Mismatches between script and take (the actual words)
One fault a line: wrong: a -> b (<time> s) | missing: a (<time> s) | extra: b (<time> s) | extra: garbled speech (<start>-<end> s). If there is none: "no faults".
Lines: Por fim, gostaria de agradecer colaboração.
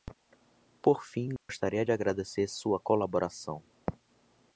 extra: sua (2.5 s)